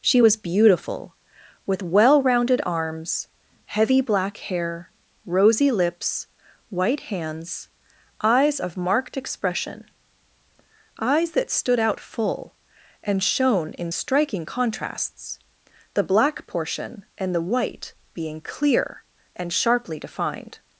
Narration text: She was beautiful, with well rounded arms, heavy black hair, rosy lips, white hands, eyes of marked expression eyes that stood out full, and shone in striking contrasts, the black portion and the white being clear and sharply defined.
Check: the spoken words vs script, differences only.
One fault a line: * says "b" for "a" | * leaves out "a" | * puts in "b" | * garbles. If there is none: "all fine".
all fine